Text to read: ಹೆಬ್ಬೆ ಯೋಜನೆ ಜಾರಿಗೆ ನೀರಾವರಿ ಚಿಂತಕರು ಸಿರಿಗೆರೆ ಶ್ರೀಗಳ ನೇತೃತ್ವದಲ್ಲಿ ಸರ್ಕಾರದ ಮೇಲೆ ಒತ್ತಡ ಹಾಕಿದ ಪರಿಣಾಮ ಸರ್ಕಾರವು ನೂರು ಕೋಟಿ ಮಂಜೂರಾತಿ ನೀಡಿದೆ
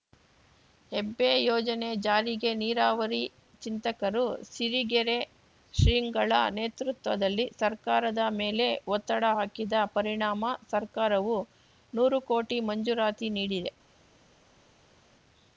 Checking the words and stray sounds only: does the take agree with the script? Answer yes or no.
yes